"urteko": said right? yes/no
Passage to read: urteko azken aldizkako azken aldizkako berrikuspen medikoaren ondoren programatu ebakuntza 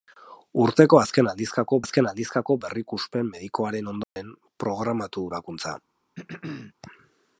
yes